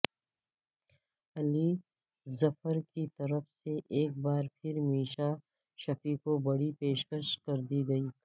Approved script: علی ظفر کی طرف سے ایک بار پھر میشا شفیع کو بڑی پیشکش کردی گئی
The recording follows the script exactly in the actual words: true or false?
true